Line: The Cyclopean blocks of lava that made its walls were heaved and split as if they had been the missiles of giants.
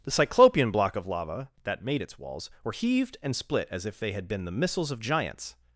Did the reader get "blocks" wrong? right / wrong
wrong